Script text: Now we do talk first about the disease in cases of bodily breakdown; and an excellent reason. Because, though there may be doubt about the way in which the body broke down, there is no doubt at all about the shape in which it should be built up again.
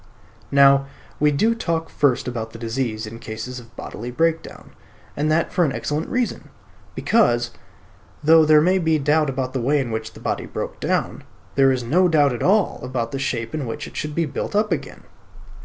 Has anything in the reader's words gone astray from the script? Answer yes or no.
yes